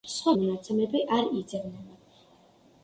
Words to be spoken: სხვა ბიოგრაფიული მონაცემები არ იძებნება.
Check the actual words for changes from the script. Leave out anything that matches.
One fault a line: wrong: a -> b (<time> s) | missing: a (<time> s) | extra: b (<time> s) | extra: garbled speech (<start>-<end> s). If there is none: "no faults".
missing: ბიოგრაფიული (0.3 s)